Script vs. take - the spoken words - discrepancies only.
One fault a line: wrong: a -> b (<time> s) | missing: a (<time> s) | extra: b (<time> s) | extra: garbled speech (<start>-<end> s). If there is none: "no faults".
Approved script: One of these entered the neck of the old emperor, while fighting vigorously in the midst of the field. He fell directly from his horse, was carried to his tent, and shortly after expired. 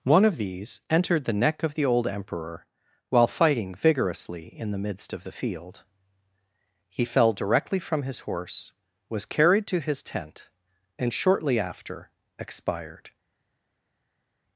no faults